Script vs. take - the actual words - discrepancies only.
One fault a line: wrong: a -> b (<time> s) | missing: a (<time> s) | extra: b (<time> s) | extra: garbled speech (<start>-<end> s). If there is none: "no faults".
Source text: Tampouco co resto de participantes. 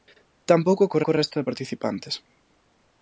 extra: co (1.0 s)